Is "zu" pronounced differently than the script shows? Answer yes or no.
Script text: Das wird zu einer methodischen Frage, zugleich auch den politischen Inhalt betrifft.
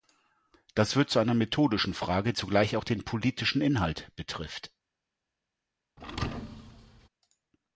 no